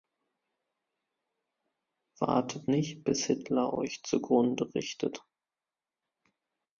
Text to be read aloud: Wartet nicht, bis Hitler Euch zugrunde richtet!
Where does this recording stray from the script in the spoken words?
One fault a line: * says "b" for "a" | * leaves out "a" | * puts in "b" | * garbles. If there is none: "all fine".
all fine